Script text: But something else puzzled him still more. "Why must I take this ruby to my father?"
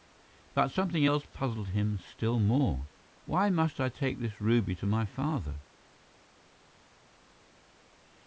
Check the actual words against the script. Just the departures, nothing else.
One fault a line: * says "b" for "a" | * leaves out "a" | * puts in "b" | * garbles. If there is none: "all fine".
all fine